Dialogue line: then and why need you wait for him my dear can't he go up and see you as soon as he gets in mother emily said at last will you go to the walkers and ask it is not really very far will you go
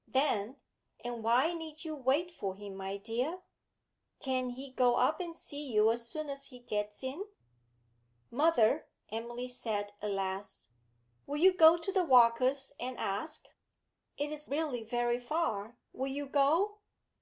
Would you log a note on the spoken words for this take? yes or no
yes